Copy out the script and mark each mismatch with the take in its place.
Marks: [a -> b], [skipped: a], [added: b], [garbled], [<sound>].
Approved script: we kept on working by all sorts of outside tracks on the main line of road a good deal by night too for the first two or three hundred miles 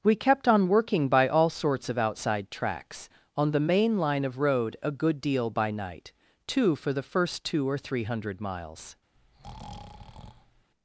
we kept on working by all sorts of outside tracks on the main line of road a good deal by night too for the first two or three hundred miles [breath]